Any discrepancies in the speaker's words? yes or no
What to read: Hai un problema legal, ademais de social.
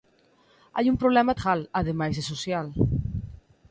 no